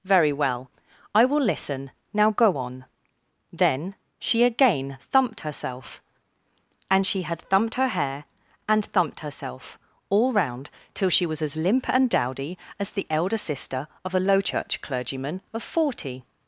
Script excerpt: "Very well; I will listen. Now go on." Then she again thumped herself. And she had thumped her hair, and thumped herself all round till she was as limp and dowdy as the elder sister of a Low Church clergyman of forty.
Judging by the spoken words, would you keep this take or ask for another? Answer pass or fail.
pass